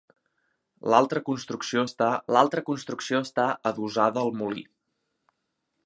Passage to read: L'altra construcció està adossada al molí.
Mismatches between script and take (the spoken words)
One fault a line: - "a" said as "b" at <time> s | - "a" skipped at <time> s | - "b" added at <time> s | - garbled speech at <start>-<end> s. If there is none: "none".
- "l'altra construcció està" added at 2.4 s